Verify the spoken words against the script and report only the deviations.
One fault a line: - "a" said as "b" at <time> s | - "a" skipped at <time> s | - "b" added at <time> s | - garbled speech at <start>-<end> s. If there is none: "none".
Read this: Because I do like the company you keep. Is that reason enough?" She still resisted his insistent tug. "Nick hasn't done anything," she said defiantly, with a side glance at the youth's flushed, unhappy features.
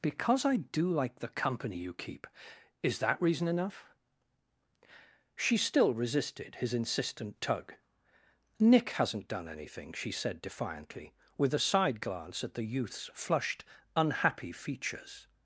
none